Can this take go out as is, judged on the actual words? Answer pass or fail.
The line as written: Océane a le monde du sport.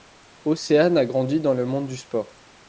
fail